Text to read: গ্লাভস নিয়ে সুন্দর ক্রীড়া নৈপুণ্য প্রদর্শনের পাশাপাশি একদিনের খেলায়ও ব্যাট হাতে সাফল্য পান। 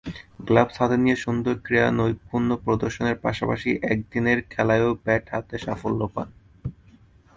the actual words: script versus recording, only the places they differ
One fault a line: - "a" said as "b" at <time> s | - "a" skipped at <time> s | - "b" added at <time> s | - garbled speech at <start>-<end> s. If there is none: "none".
- "হাতে" added at 0.8 s